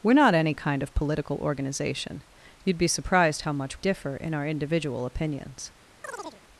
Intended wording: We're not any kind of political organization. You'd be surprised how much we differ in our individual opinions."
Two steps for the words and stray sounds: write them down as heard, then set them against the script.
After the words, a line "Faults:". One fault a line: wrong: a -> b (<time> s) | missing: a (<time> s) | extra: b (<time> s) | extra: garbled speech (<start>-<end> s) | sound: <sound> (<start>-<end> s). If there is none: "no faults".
We're not any kind of political organization. You'd be surprised how much differ in our individual opinions."
Faults:
missing: we (3.8 s)
sound: chirp (6.0-6.4 s)